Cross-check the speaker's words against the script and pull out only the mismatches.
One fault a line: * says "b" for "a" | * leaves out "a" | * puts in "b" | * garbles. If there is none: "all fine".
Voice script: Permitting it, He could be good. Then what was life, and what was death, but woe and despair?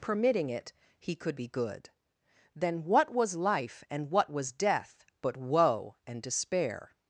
all fine